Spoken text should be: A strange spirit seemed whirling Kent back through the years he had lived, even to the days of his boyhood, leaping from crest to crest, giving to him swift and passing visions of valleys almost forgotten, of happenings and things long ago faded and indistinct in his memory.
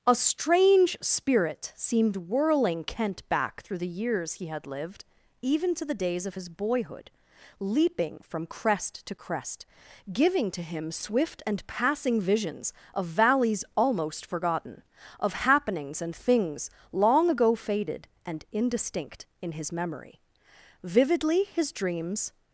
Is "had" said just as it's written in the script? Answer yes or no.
yes